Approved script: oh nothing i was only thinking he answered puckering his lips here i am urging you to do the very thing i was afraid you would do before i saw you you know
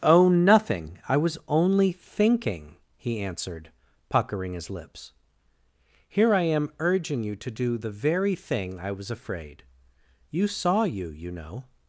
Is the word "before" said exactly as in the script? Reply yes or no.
no